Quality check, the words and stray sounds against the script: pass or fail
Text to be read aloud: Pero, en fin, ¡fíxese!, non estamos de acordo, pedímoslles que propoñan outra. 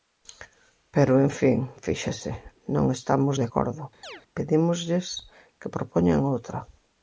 fail